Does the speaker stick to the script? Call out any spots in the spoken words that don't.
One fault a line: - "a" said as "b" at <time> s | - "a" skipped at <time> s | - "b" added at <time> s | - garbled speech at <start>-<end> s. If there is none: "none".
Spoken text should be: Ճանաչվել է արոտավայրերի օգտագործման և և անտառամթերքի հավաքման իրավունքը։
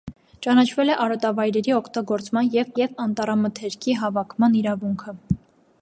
none